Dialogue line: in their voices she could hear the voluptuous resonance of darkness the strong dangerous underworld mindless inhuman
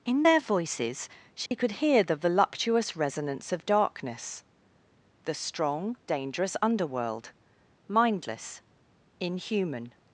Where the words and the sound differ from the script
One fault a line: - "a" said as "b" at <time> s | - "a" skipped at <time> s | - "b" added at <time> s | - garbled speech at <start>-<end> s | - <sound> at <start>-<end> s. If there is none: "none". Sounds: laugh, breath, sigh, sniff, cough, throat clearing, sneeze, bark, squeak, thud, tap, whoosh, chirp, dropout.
- dropout at 1.5-1.5 s